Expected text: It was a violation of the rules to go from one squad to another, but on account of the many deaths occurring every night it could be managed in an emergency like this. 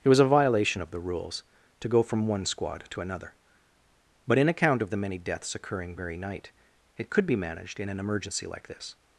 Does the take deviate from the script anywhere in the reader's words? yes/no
yes